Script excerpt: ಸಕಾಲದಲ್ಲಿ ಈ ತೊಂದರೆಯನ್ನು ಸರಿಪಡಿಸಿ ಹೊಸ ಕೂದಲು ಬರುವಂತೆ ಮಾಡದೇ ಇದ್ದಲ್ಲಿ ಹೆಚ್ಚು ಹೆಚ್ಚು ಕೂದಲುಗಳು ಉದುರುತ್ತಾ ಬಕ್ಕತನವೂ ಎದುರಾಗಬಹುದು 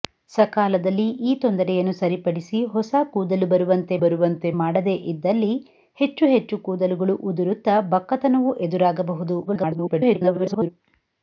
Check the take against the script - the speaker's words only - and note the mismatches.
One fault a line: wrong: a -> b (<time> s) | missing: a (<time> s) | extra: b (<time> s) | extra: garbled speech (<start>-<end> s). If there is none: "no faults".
extra: ಬರುವಂತೆ (4.0 s)
extra: garbled speech (9.5-10.7 s)